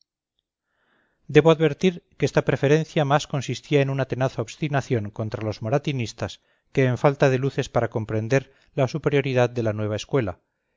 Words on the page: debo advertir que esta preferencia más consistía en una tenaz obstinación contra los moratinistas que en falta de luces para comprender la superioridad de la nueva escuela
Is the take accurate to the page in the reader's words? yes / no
yes